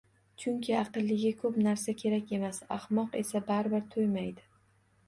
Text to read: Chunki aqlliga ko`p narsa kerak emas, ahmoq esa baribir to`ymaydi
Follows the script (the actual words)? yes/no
yes